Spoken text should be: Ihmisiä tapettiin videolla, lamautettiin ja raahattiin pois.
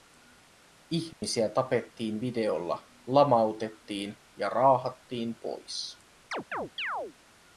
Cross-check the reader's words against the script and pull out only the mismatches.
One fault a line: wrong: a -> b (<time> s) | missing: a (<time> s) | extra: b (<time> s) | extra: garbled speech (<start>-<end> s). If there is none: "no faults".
no faults